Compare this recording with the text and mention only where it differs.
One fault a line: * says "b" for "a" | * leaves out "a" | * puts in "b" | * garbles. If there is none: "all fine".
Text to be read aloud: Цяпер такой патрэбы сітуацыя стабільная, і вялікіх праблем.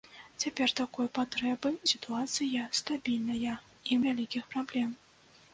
all fine